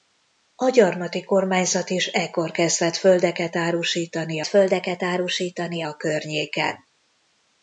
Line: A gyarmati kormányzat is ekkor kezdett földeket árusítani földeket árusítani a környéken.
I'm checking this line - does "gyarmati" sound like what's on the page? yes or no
yes